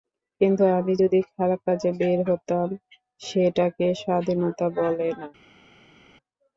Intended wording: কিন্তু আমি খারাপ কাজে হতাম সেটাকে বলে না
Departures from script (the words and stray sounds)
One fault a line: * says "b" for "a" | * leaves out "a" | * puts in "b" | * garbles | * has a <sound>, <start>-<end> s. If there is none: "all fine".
* puts in "যদি"
* puts in "বের"
* puts in "স্বাধীনতা"